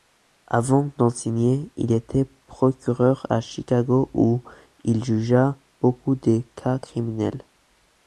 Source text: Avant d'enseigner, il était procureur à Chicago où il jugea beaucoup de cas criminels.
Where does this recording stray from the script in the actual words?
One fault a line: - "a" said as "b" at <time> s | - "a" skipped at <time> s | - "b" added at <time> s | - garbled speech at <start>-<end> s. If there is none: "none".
none